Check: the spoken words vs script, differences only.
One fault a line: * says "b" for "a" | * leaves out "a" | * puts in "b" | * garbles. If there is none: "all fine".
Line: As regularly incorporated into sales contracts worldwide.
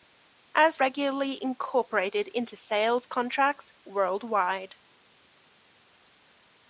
all fine